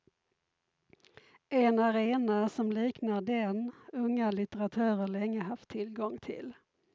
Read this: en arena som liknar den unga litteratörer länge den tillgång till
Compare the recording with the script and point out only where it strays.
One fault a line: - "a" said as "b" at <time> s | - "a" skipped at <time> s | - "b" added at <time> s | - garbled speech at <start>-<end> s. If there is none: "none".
- "den" said as "haft" at 5.4 s